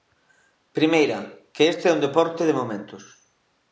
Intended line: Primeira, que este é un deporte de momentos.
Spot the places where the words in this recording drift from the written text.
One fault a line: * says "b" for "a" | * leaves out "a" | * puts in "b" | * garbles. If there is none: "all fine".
all fine